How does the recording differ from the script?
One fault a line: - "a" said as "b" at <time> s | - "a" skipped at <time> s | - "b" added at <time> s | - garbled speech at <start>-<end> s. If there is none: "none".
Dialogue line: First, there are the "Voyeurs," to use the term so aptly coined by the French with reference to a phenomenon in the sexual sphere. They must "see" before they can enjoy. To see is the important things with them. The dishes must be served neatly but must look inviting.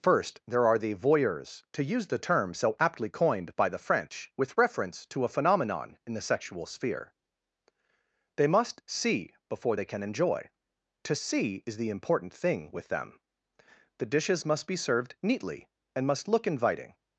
- "things" said as "thing" at 12.3 s
- "but" said as "and" at 15.9 s